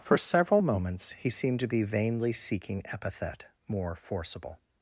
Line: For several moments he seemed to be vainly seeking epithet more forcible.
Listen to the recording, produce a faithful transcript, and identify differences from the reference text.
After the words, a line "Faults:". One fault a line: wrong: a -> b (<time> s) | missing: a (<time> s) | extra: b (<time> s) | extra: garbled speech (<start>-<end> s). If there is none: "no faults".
For several moments he seemed to be vainly seeking epithet more forcible.
Faults:
no faults